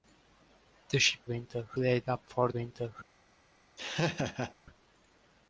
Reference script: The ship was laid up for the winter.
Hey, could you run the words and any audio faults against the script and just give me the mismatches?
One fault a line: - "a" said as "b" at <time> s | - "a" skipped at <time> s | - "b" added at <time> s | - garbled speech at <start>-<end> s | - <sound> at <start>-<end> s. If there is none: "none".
- "was" said as "winter" at 1.2 s
- "the" skipped at 2.5 s
- laugh at 3.8-4.5 s